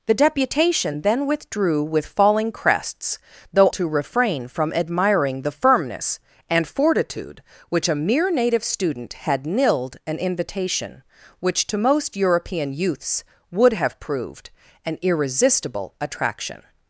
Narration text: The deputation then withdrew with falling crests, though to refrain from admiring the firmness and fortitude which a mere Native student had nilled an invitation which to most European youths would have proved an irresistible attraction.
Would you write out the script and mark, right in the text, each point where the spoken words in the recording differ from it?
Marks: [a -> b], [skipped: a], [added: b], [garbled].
The deputation then withdrew with falling crests, though to refrain from admiring the firmness and fortitude which a mere Native student had nilled an invitation which to most European youths would have proved an irresistible attraction.